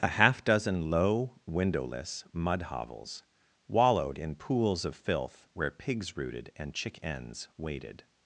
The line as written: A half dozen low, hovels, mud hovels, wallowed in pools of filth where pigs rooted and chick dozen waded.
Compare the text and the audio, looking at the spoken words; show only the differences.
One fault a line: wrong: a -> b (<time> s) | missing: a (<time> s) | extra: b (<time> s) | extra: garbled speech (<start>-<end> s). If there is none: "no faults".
wrong: hovels -> windowless (1.4 s)
wrong: dozen -> ens (7.0 s)